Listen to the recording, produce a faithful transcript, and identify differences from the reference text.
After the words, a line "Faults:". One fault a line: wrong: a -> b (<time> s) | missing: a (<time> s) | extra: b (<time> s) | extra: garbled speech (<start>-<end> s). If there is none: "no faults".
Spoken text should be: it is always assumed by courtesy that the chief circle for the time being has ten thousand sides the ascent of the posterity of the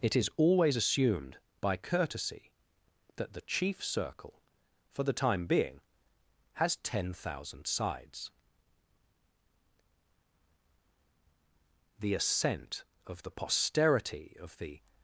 it is always assumed by courtesy that the chief circle for the time being has ten thousand sides the ascent of the posterity of the
Faults:
no faults